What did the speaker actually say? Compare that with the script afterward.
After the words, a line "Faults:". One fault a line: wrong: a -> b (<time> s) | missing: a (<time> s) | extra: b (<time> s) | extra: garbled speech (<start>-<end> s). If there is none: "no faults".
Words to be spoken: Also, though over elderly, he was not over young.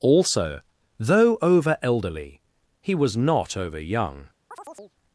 Also, though over elderly, he was not over young.
Faults:
no faults